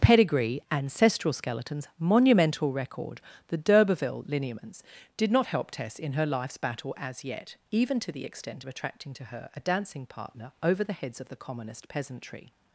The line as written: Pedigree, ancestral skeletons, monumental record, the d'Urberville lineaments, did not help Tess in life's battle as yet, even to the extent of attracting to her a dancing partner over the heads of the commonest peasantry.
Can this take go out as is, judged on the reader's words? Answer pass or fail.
fail